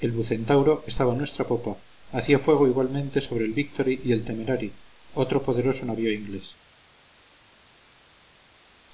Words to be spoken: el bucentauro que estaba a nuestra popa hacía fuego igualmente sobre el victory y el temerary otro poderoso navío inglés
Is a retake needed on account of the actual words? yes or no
no